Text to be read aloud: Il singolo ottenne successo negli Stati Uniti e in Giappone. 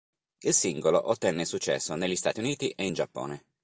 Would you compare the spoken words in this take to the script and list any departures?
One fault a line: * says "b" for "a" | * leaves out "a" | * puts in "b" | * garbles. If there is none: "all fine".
all fine